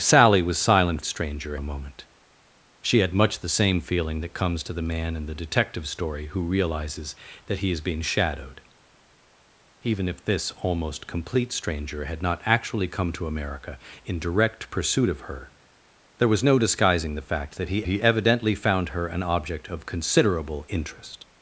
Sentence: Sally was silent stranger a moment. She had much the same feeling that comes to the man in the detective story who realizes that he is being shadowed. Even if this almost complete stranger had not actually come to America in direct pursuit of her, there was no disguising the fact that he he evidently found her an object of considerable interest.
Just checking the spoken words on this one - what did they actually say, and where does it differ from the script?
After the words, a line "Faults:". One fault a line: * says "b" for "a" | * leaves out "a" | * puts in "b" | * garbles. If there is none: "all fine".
Sally was silent stranger a moment. She had much the same feeling that comes to the man in the detective story who realizes that he is being shadowed. Even if this almost complete stranger had not actually come to America in direct pursuit of her, there was no disguising the fact that he he evidently found her an object of considerable interest.
Faults:
all fine